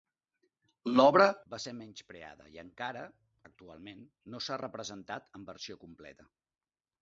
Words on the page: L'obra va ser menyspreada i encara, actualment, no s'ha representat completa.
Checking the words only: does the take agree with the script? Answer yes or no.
no